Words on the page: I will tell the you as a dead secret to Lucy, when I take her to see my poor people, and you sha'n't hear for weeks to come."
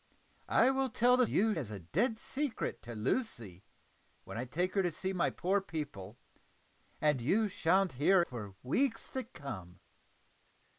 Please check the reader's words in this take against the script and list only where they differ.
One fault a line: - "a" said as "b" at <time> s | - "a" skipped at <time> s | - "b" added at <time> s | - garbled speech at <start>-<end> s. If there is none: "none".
none